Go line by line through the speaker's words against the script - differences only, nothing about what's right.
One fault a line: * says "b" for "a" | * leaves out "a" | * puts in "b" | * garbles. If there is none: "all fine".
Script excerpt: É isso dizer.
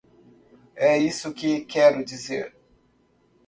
* puts in "que quero"